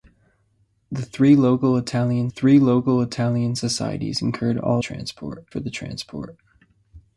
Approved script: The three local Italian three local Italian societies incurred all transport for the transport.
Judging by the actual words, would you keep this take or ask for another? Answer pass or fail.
pass